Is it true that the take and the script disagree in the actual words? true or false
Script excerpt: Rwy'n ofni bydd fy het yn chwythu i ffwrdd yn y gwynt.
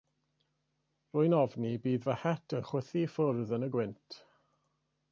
false